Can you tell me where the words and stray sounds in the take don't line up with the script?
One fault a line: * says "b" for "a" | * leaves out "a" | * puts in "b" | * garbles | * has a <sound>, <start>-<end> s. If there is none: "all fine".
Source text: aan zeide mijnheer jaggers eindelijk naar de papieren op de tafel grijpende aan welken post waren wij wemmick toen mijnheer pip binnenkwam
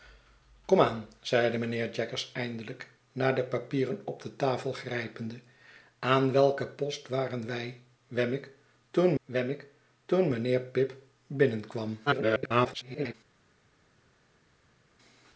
* puts in "wemmick toen"
* garbles